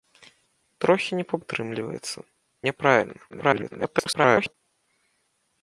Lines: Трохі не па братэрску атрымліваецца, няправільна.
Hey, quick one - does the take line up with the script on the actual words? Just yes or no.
no